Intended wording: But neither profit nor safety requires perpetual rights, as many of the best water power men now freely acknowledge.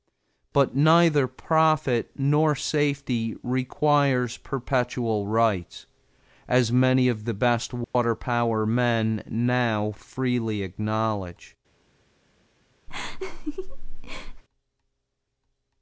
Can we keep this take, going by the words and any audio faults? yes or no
no